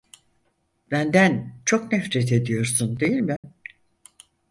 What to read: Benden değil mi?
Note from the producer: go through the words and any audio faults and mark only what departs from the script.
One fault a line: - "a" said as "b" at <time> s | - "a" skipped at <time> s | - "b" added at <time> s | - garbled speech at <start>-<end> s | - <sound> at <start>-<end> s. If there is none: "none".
- "çok nefret ediyorsun" added at 1.6 s
- dropout at 3.4-3.4 s